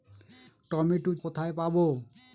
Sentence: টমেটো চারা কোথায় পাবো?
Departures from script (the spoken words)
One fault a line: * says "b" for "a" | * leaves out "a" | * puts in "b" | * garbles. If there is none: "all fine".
* leaves out "চারা"